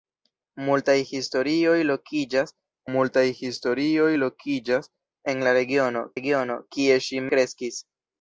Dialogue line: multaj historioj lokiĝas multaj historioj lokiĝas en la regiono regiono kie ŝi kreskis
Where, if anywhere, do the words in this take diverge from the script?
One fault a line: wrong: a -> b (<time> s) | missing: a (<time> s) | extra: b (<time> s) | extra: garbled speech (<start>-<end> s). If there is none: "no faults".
no faults